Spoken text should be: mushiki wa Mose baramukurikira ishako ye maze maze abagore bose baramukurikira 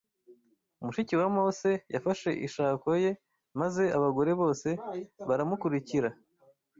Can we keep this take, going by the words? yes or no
no